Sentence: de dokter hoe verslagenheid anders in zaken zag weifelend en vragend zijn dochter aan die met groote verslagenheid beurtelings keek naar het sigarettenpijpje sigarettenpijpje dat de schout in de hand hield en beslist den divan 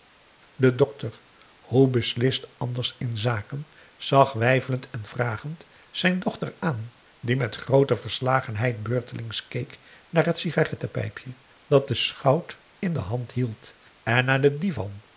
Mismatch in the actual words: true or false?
true